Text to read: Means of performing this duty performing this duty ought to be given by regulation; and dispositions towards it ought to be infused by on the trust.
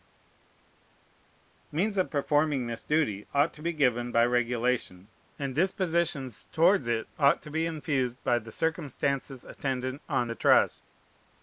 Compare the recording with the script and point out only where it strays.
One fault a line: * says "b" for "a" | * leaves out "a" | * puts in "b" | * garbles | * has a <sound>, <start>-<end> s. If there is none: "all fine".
* leaves out "performing this duty"
* puts in "the circumstances attendant"